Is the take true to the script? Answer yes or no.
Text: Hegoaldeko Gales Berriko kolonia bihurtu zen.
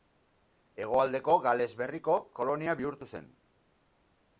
yes